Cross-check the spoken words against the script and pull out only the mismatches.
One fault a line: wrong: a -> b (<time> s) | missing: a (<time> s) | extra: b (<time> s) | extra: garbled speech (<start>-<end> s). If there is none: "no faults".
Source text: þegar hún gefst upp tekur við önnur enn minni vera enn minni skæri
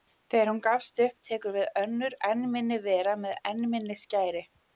extra: með (3.3 s)